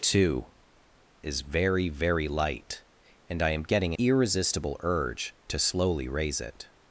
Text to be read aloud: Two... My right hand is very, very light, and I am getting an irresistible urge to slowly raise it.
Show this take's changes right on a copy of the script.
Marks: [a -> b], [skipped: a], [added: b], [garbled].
Two... [skipped: My right hand] is very, very light, and I am getting [skipped: an] irresistible urge to slowly raise it.